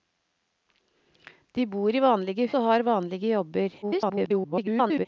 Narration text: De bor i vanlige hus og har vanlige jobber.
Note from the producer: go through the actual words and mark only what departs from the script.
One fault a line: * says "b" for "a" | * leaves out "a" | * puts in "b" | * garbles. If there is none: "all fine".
* leaves out "hus"
* garbles